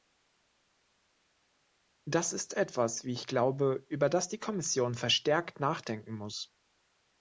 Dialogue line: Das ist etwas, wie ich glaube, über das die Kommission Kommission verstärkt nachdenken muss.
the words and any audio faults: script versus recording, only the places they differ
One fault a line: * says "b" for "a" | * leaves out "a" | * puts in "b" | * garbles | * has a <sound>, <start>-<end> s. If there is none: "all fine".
* leaves out "Kommission"